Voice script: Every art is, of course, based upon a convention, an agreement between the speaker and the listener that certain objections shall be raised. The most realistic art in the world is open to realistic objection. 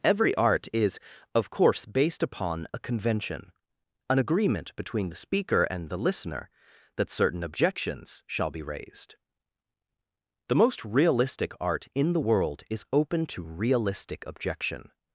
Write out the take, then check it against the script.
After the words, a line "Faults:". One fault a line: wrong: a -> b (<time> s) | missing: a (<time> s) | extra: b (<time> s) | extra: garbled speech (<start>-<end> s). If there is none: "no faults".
Every art is, of course, based upon a convention, an agreement between the speaker and the listener that certain objections shall be raised. The most realistic art in the world is open to realistic objection.
Faults:
no faults